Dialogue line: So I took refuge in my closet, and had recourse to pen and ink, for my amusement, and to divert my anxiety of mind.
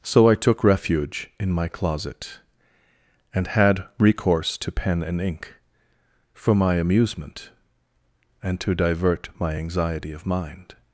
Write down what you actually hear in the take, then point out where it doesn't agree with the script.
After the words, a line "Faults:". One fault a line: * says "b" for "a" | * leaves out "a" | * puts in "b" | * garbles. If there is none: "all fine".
So I took refuge in my closet, and had recourse to pen and ink, for my amusement, and to divert my anxiety of mind.
Faults:
all fine